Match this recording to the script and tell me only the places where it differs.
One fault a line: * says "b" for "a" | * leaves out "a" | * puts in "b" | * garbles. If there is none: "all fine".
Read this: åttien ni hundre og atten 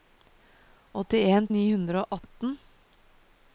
all fine